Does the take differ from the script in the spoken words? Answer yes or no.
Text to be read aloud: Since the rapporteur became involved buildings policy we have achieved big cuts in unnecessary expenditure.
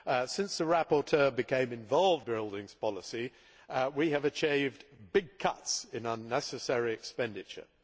no